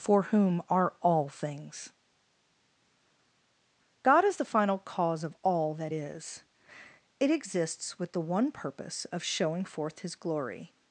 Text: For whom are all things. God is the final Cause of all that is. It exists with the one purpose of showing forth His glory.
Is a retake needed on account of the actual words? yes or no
no